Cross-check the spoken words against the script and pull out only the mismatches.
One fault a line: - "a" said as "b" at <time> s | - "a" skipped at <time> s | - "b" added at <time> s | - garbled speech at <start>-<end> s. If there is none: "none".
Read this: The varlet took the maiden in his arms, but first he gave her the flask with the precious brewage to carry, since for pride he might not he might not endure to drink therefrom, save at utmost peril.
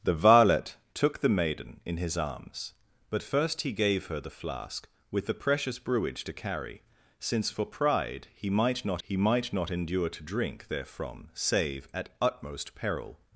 none